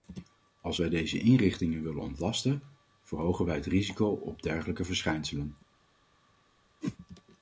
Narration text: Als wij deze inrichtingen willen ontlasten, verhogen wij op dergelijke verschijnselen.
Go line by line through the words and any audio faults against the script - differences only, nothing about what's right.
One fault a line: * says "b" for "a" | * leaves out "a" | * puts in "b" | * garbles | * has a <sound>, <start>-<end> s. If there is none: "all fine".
* puts in "het risico"
* has a whoosh, 6.8-7.0 s